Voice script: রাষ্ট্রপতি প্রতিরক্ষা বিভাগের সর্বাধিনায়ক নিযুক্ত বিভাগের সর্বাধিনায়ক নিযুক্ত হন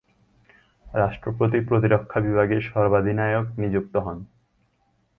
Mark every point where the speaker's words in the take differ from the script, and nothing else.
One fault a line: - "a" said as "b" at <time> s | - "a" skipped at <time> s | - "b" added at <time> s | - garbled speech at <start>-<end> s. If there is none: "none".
- "বিভাগের সর্বাধিনায়ক নিযুক্ত" skipped at 3.9 s